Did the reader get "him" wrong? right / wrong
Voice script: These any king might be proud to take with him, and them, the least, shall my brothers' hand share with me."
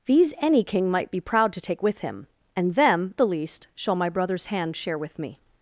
right